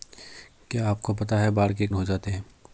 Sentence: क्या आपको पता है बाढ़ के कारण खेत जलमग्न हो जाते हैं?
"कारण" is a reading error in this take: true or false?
true